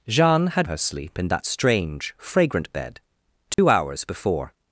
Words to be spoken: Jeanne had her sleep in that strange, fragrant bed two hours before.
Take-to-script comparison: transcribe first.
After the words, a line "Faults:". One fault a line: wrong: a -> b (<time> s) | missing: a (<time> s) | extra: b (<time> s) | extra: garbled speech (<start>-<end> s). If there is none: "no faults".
Jeanne had her sleep in that strange, fragrant bed two hours before.
Faults:
no faults